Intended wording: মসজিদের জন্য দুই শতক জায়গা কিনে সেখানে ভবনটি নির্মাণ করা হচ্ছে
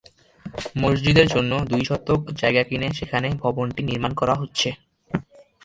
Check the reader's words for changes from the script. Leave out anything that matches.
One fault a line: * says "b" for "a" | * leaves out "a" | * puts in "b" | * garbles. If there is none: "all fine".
all fine